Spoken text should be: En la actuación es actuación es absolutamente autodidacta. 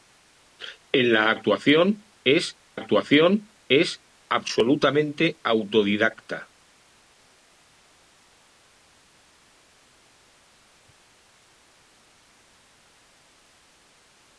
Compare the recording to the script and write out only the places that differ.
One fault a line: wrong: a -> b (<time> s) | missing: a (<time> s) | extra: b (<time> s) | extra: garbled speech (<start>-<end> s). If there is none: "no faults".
no faults